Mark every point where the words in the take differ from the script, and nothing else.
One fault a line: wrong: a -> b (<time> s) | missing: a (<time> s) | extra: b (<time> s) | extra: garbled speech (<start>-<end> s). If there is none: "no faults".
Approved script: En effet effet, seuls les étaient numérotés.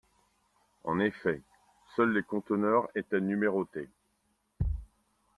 missing: effet (1.4 s)
extra: conteneurs (2.2 s)